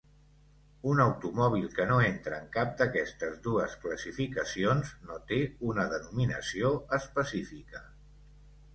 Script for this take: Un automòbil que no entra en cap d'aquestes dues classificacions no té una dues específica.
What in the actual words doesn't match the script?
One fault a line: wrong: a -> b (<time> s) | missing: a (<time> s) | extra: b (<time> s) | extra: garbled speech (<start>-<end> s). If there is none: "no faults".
wrong: dues -> denominació (6.0 s)